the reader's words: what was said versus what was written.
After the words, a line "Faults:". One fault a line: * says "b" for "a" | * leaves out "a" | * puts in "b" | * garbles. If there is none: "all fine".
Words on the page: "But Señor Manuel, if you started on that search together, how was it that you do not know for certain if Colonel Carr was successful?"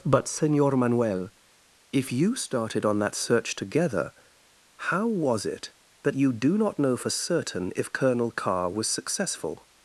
"But Señor Manuel, if you started on that search together, how was it that you do not know for certain if Colonel Carr was successful?"
Faults:
all fine